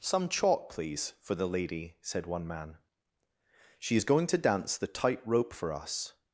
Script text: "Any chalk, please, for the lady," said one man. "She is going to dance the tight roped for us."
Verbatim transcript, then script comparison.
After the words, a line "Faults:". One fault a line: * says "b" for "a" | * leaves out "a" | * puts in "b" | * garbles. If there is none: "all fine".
"Some chalk, please, for the lady," said one man. "She is going to dance the tight rope for us."
Faults:
* says "Some" for "Any"
* says "rope" for "roped"